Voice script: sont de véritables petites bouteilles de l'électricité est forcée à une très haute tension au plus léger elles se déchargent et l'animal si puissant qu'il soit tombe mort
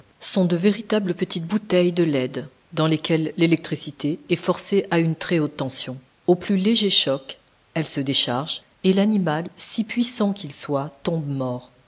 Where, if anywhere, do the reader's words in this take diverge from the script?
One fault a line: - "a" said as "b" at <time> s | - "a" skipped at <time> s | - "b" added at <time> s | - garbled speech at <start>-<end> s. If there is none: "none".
- "leyde dans lesquelles" added at 2.0 s
- "choc" added at 6.9 s